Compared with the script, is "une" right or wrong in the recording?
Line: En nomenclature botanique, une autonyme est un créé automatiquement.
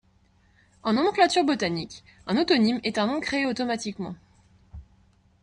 wrong